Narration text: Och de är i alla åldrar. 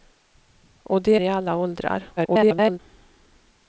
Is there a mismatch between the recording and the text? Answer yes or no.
yes